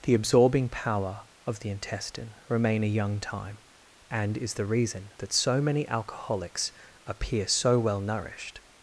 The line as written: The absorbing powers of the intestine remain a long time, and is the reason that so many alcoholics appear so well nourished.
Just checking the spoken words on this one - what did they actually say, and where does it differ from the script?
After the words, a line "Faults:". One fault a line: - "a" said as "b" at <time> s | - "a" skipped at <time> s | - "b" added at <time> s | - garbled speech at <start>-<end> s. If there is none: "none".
The absorbing power of the intestine remain a young time, and is the reason that so many alcoholics appear so well nourished.
Faults:
- "powers" said as "power" at 0.7 s
- "long" said as "young" at 2.9 s